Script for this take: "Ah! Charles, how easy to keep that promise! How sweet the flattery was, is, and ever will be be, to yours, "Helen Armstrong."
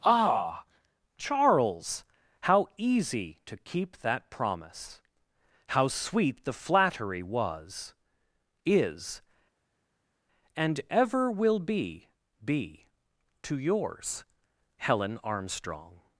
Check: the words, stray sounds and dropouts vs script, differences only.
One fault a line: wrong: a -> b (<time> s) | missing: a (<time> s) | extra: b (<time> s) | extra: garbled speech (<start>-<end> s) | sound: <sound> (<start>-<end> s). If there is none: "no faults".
no faults